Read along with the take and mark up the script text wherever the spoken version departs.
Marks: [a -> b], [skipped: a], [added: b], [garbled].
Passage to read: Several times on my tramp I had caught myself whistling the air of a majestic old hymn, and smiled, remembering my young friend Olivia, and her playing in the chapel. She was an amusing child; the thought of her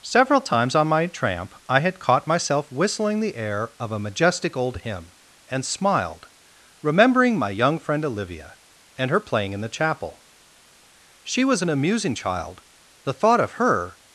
Several times on my tramp I had caught myself whistling the air of a majestic old hymn, and smiled, remembering my young friend Olivia, and her playing in the chapel. She was an amusing child; the thought of her